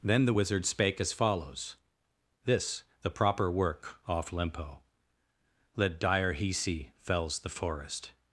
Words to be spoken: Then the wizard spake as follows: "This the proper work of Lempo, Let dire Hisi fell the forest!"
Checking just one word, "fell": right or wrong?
wrong